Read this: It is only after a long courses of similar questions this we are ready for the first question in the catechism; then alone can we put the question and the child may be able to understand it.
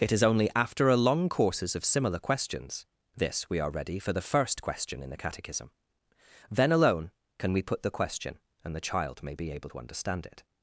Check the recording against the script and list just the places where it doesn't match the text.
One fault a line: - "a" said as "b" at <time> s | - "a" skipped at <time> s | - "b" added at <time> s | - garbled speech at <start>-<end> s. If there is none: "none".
none